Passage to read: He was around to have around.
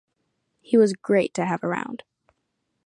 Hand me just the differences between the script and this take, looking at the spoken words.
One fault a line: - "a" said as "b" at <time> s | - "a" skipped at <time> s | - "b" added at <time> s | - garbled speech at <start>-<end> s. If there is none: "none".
- "around" said as "great" at 0.9 s